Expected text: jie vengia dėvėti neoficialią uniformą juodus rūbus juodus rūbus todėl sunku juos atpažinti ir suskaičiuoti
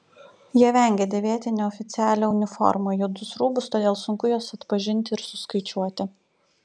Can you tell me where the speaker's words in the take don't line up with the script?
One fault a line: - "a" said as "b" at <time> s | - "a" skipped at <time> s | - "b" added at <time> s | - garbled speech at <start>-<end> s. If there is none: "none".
- "juodus rūbus" skipped at 3.7 s